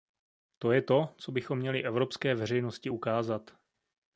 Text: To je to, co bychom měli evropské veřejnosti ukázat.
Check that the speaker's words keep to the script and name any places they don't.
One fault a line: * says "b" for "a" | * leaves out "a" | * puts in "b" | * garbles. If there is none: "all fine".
all fine